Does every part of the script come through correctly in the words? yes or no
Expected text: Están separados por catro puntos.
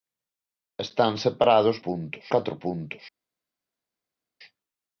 no